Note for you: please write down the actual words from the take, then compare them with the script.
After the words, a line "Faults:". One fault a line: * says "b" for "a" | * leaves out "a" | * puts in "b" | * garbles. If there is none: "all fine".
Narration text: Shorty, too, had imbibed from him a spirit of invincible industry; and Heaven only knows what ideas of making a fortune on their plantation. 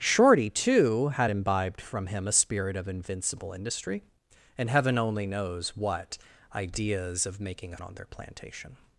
Shorty, too, had imbibed from him a spirit of invincible industry; and Heaven only knows what ideas of making a on their plantation.
Faults:
* leaves out "fortune"